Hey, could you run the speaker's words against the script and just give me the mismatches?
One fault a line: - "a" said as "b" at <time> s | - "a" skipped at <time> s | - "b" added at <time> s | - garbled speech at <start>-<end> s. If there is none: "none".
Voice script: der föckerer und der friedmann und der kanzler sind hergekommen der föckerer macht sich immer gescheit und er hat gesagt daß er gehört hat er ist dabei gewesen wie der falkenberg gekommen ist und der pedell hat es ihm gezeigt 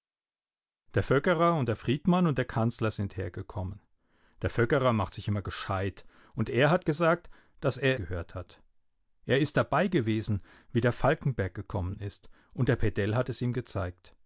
none